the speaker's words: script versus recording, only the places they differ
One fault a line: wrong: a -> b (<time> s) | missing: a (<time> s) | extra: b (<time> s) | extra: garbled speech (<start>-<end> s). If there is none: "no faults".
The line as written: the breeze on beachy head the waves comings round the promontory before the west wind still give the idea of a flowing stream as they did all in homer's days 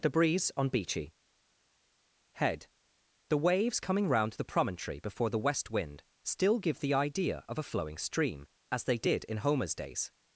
wrong: comings -> coming (3.8 s)
missing: all (9.2 s)